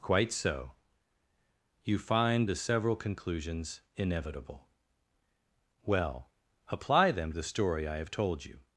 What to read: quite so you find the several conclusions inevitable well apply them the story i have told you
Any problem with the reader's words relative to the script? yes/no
no